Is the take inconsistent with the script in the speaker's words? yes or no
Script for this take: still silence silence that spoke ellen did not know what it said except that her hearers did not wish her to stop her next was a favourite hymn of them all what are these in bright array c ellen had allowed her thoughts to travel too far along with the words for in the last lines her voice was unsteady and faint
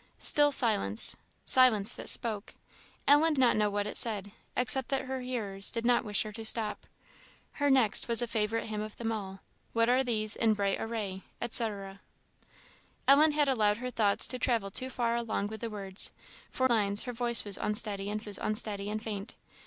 yes